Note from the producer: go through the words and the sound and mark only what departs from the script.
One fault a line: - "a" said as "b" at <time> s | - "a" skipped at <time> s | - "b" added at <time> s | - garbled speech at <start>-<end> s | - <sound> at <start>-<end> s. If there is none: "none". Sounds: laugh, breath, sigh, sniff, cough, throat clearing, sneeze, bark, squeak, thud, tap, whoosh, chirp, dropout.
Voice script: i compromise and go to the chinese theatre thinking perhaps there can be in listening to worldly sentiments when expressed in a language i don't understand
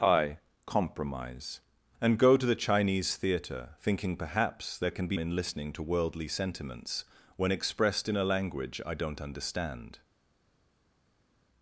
none